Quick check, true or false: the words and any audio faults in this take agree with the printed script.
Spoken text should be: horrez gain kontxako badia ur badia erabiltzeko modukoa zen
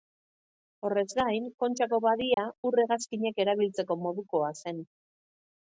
false